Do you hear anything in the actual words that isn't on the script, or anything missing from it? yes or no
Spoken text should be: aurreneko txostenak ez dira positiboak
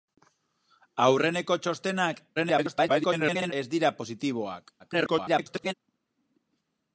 yes